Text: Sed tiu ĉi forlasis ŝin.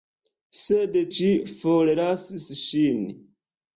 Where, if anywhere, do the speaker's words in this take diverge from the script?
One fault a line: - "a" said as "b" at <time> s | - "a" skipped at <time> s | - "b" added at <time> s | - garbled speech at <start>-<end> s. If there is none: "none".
- "tiu" skipped at 0.9 s